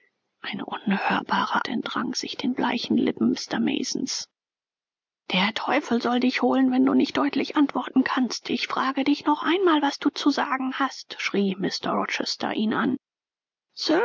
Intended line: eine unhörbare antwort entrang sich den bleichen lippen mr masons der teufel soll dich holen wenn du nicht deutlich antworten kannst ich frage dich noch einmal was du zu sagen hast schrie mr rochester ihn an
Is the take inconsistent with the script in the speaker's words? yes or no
yes